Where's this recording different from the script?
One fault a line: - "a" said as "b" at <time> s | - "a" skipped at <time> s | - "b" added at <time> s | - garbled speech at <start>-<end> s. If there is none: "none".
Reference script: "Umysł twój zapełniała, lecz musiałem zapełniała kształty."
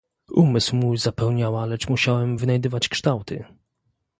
- "twój" said as "mój" at 0.8 s
- "zapełniała" said as "wynajdywać" at 2.4 s